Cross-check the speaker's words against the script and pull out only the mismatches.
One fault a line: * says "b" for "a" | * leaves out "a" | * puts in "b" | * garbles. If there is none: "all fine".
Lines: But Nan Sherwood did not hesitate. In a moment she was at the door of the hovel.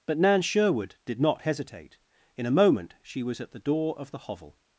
all fine